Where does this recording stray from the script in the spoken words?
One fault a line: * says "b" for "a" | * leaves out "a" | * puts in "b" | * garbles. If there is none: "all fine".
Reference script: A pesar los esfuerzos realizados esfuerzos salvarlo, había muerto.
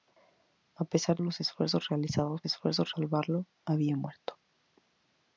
all fine